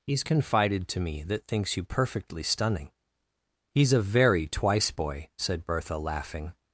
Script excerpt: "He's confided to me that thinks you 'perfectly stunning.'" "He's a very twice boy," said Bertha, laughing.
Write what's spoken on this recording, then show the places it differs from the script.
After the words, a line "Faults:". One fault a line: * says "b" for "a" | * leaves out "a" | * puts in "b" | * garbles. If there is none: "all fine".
"He's confided to me that thinks you 'perfectly stunning.'" "He's a very twice boy," said Bertha, laughing.
Faults:
all fine